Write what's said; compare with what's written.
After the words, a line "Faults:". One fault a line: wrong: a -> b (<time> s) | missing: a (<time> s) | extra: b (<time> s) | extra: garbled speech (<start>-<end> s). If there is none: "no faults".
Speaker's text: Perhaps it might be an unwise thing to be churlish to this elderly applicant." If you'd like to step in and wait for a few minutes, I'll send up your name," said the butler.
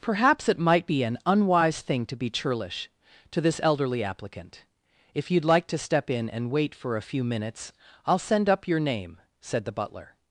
Perhaps it might be an unwise thing to be churlish to this elderly applicant." If you'd like to step in and wait for a few minutes, I'll send up your name," said the butler.
Faults:
no faults